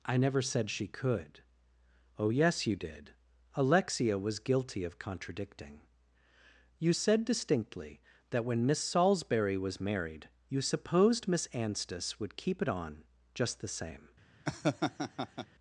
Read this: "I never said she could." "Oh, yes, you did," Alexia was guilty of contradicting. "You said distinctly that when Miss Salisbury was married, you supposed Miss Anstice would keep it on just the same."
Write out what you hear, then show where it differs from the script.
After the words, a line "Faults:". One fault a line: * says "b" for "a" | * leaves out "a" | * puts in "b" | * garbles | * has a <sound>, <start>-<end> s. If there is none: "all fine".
"I never said she could." "Oh, yes, you did," Alexia was guilty of contradicting. "You said distinctly that when Miss Salisbury was married, you supposed Miss Anstice would keep it on just the same."
Faults:
* has a laugh, 14.4-15.5 s